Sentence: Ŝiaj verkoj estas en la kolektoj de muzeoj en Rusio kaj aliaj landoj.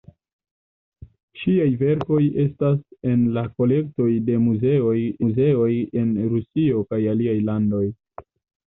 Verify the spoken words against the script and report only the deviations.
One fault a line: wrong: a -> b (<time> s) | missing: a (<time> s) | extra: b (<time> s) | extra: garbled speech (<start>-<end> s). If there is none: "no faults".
extra: muzeoj (5.2 s)